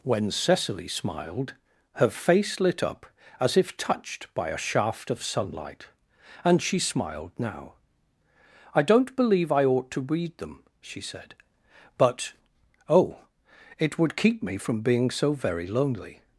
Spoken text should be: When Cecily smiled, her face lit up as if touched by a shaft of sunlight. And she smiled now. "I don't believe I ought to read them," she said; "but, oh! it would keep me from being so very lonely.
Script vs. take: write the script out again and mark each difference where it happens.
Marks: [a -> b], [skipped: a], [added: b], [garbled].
When Cecily smiled, her face lit up as if touched by a shaft of sunlight. And she smiled now. "I don't believe I ought to read them," she said; "but, oh! it would keep me from being so very lonely.